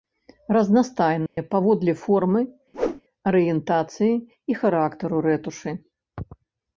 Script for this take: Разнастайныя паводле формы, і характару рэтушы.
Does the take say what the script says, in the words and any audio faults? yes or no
no